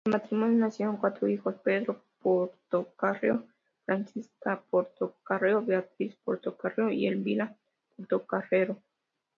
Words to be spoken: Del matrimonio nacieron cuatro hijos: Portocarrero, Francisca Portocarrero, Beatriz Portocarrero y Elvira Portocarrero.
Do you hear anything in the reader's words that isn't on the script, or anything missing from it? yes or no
yes